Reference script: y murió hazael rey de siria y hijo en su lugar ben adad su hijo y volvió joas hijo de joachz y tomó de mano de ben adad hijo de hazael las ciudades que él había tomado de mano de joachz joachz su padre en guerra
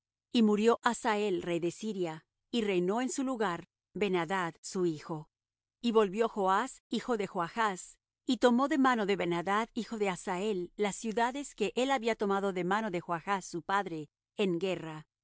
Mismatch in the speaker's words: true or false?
true